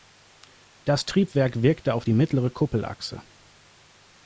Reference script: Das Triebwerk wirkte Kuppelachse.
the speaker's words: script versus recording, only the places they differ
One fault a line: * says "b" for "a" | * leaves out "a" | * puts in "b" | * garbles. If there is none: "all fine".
* puts in "auf die mittlere"